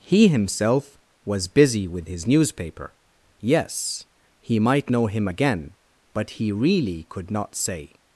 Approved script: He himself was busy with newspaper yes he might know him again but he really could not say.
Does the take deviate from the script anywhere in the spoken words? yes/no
yes